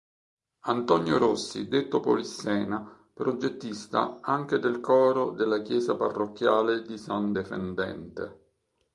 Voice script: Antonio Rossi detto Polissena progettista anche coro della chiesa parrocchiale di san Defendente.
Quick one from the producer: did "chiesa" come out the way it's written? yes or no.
yes